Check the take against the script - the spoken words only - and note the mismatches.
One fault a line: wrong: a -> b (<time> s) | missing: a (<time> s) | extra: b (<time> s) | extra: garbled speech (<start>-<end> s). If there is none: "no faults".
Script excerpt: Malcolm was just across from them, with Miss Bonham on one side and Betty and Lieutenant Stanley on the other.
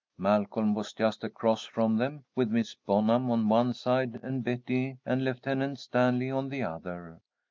no faults